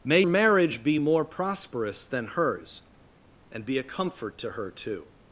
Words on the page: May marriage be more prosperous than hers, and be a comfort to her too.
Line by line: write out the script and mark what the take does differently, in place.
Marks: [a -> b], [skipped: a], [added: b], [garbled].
May marriage be more prosperous than hers, and be a comfort to her too.